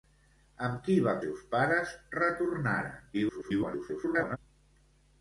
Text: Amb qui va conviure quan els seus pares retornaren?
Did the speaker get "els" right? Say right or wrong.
wrong